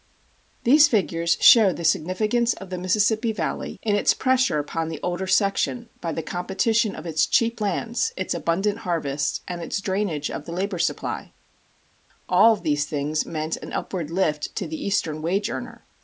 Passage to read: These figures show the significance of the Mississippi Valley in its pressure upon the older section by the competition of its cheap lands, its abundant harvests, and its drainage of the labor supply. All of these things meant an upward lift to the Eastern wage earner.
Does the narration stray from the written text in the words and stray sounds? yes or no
no